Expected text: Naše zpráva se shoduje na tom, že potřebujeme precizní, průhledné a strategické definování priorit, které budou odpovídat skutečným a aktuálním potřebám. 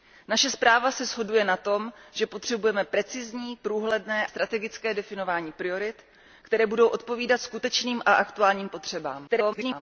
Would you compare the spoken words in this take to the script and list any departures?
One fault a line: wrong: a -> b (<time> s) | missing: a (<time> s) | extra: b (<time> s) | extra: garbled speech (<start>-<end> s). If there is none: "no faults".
missing: a (4.3 s)
extra: garbled speech (9.3-9.8 s)